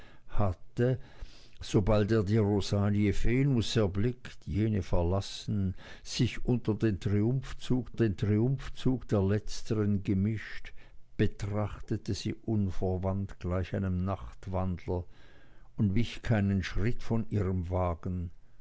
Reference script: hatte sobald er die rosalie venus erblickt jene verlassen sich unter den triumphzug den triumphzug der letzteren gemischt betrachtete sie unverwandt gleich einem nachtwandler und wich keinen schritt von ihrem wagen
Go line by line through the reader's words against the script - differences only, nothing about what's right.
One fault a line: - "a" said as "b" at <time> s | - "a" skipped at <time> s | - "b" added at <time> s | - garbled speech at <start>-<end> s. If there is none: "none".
none